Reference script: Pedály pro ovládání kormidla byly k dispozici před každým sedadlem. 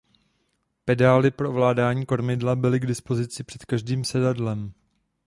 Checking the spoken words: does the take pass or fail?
pass